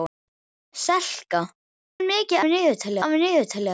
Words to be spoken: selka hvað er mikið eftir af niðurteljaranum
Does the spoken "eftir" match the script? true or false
false